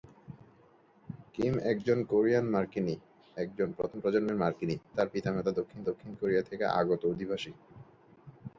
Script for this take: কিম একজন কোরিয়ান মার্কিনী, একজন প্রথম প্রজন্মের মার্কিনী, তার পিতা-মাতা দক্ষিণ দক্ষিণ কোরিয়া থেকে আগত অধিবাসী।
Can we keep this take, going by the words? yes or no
yes